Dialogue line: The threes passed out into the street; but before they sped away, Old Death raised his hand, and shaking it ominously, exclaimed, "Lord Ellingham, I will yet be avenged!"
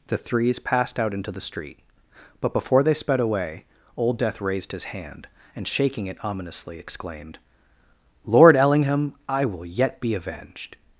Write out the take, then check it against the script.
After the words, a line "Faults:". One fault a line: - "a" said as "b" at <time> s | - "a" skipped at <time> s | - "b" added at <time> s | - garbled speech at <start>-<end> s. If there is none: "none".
The threes passed out into the street; but before they sped away, Old Death raised his hand, and shaking it ominously, exclaimed, "Lord Ellingham, I will yet be avenged!"
Faults:
none